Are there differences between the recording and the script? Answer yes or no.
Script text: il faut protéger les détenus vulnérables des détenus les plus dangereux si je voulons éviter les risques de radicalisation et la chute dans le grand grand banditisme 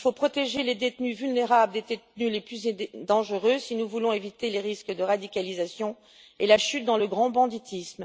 yes